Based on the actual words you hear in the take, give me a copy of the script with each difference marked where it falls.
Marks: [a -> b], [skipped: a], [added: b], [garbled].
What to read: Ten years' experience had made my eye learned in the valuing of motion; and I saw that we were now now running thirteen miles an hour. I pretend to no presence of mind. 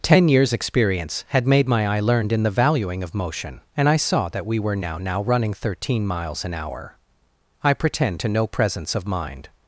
Ten years' experience had made my eye learned in the valuing of motion; and I saw that we were now now running thirteen miles an hour. I pretend to no presence of mind.